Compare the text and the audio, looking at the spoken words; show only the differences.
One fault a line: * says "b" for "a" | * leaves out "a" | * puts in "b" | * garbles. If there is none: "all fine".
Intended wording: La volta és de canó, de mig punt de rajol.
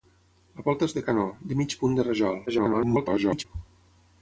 * garbles